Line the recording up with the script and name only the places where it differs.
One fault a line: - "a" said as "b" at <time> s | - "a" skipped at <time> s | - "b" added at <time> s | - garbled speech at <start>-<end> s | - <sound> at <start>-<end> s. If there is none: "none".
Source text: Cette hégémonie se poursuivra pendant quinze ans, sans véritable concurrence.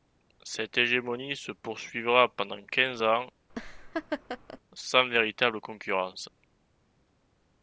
- laugh at 3.5-4.6 s